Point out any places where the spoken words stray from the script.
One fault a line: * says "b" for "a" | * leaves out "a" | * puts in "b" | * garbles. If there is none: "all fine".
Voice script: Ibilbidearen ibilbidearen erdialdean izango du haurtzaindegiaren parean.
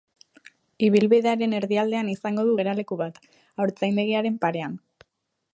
* leaves out "ibilbidearen"
* puts in "geraleku bat"